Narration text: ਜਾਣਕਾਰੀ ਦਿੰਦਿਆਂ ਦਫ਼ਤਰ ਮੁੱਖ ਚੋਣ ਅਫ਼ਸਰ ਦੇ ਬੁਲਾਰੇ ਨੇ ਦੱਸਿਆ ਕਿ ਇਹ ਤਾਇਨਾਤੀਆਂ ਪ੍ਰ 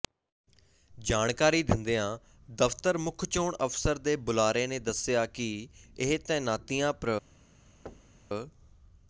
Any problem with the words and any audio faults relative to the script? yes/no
yes